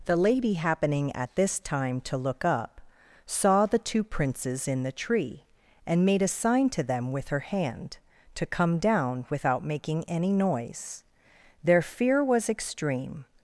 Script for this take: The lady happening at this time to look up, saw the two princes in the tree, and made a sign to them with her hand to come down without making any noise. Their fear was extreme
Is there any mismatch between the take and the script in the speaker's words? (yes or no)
no